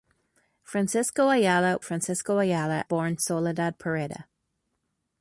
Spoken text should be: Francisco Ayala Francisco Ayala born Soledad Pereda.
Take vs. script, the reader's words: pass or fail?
pass